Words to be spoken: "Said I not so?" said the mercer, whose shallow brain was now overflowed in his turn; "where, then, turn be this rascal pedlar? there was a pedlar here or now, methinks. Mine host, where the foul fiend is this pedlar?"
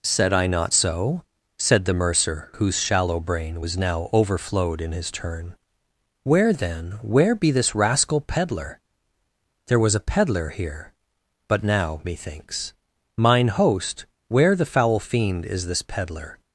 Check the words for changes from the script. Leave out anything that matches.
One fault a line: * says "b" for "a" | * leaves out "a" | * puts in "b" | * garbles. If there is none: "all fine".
* says "where" for "turn"
* says "but" for "or"